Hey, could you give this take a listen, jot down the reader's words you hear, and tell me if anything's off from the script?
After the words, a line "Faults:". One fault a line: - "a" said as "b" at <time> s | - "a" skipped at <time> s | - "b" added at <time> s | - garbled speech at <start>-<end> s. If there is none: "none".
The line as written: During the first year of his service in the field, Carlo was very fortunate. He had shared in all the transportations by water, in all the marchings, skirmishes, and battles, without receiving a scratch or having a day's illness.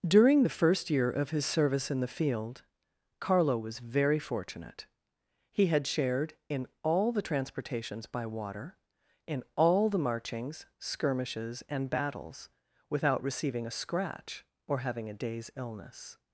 During the first year of his service in the field, Carlo was very fortunate. He had shared in all the transportations by water, in all the marchings, skirmishes, and battles, without receiving a scratch or having a day's illness.
Faults:
none